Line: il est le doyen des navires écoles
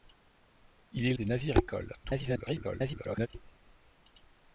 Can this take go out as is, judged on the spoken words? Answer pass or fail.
fail